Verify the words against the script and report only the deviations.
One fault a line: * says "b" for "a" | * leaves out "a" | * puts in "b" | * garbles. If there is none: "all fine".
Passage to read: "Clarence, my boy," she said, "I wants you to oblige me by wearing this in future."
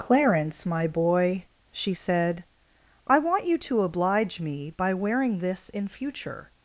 * says "want" for "wants"